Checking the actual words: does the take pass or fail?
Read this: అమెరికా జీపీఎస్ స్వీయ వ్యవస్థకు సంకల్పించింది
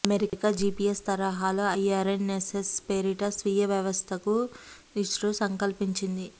fail